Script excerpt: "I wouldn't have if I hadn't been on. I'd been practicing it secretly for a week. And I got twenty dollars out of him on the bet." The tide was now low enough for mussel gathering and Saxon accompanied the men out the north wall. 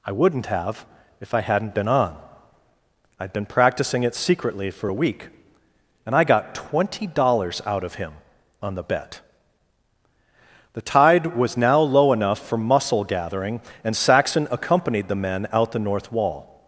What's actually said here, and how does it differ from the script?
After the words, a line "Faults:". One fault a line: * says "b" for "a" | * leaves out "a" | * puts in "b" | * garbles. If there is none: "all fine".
"I wouldn't have if I hadn't been on. I'd been practicing it secretly for a week. And I got twenty dollars out of him on the bet." The tide was now low enough for mussel gathering and Saxon accompanied the men out the north wall.
Faults:
all fine